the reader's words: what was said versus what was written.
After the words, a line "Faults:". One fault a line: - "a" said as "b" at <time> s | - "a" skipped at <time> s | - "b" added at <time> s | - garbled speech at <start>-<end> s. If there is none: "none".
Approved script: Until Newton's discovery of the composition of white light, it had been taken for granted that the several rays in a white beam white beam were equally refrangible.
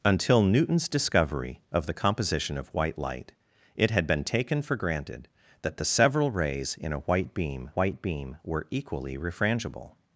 Until Newton's discovery of the composition of white light, it had been taken for granted that the several rays in a white beam white beam were equally refrangible.
Faults:
none